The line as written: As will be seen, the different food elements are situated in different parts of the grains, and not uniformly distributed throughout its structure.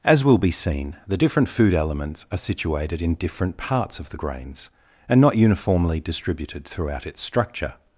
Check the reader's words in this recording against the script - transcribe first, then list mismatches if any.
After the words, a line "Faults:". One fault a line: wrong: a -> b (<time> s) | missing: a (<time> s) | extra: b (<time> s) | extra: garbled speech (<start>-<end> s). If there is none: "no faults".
As will be seen, the different food elements are situated in different parts of the grains, and not uniformly distributed throughout its structure.
Faults:
no faults